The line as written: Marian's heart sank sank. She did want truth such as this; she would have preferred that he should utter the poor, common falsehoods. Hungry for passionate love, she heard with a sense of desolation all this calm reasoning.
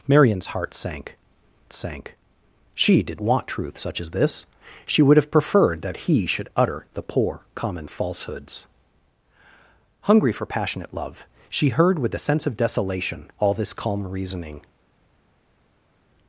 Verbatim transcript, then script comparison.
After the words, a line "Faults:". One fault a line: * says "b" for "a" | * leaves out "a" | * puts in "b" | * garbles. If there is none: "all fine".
Marian's heart sank sank. She did want truth such as this; she would have preferred that he should utter the poor, common falsehoods. Hungry for passionate love, she heard with a sense of desolation all this calm reasoning.
Faults:
all fine